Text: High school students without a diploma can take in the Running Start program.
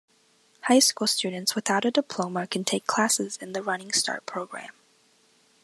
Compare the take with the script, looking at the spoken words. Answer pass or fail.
fail